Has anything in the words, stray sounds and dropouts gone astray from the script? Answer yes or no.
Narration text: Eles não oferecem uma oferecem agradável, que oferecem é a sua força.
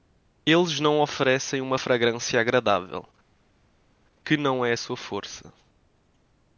yes